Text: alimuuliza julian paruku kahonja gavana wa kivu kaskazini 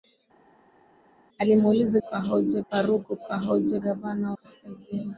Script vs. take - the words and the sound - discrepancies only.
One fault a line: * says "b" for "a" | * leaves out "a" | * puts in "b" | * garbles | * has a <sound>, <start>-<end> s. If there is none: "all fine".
* says "kahonja" for "julian"
* leaves out "wa kivu"